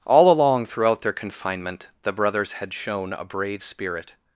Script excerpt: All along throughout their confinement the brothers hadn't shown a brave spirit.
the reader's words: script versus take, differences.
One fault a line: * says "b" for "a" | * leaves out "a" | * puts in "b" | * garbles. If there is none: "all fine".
* says "had" for "hadn't"